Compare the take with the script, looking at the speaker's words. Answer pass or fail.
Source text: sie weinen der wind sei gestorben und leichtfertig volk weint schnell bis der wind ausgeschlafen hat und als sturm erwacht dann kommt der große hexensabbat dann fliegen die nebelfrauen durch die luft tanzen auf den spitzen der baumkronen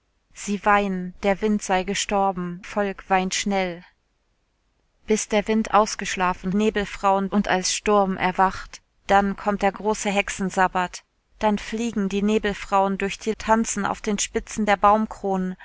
fail